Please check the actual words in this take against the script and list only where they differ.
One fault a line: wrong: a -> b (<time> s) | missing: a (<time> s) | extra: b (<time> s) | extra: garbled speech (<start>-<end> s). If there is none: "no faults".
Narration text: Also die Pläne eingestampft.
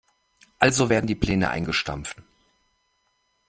extra: werden (0.9 s)